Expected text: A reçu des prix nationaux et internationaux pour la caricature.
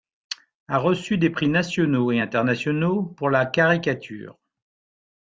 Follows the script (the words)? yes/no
yes